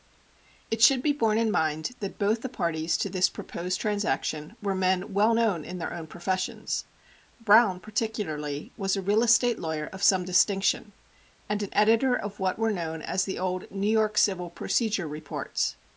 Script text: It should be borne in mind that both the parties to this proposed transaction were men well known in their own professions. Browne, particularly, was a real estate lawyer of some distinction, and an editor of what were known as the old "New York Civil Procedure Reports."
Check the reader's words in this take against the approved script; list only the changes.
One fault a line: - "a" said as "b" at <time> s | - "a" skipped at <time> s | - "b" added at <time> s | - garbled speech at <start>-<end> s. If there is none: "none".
none